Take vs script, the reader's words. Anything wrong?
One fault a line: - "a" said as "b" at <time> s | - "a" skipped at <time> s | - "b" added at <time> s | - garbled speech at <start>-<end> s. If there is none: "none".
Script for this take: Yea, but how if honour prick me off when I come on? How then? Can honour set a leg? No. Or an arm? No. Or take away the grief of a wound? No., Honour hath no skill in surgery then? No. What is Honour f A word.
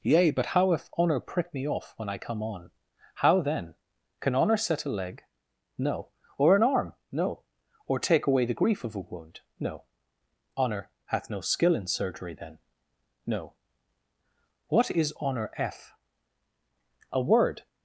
none